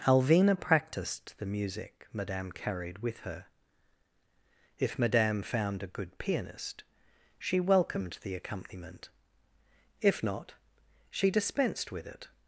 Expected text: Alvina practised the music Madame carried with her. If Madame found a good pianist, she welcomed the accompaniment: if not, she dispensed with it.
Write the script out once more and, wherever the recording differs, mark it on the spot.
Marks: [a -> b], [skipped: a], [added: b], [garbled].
Alvina practised the music Madame carried with her. If Madame found a good pianist, she welcomed the accompaniment: if not, she dispensed with it.